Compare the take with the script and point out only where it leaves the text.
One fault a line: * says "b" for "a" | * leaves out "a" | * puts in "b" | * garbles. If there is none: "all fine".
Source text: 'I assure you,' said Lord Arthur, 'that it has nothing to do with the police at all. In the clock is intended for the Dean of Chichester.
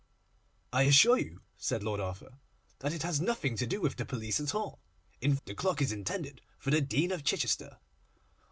all fine